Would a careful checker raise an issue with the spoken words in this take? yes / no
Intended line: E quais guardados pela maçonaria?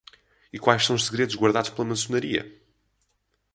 yes